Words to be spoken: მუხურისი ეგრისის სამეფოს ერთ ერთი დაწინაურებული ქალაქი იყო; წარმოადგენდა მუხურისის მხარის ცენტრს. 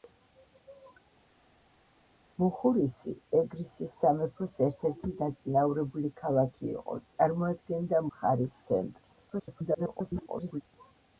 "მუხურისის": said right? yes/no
no